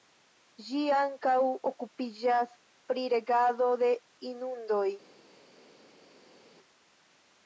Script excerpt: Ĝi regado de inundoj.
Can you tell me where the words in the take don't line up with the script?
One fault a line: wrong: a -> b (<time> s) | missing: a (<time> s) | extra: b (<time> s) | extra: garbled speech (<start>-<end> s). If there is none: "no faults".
extra: ankaŭ okupiĝas pri (1.0 s)